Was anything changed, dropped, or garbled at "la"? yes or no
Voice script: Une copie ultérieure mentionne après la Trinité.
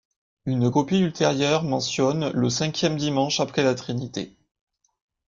no